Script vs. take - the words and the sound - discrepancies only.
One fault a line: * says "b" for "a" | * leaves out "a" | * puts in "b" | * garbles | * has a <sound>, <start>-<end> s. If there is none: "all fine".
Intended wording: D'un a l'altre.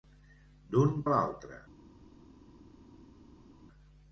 all fine